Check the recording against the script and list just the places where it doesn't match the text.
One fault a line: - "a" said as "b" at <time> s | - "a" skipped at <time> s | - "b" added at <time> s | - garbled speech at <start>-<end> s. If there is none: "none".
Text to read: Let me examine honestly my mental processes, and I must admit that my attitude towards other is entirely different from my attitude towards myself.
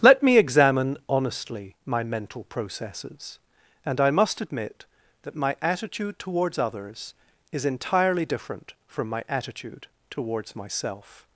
- "other" said as "others" at 6.6 s